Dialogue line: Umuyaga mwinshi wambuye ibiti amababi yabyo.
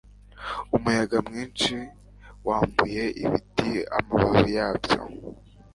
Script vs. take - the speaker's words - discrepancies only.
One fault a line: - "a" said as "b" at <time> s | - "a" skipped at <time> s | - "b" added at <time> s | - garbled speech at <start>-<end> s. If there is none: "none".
none